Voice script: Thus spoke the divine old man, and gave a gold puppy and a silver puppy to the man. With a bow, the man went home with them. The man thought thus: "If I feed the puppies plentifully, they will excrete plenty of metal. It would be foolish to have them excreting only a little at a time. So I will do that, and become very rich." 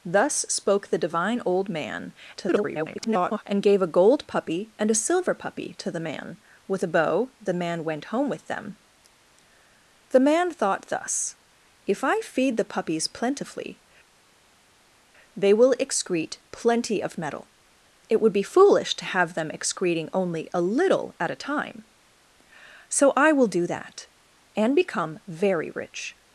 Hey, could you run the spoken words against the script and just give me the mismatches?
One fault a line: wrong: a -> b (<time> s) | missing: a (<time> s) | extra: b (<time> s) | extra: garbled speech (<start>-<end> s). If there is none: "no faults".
extra: garbled speech (2.3-3.4 s)